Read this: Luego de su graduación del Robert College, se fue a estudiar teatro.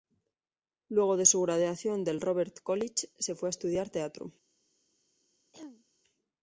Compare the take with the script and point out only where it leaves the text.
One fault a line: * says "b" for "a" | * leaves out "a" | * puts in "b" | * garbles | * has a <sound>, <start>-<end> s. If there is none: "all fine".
* has a throat clearing, 5.5-5.9 s